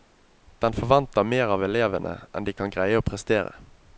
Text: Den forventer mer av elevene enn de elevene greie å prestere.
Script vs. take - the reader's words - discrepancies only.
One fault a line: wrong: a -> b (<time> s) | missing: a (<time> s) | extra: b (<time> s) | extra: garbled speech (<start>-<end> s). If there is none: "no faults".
wrong: elevene -> kan (2.5 s)